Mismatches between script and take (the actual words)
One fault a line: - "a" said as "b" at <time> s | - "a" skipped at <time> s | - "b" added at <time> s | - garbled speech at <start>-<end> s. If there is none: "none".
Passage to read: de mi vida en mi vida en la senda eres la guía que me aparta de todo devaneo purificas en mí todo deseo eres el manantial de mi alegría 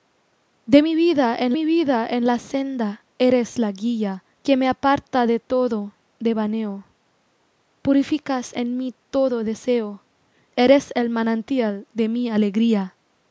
none